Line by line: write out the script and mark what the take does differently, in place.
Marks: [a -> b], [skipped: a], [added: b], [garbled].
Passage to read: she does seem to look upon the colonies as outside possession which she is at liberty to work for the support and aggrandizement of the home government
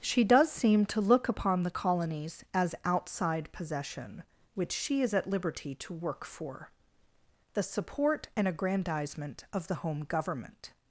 she does seem to look upon the colonies as outside possession which she is at liberty to work for the support and aggrandizement of the home government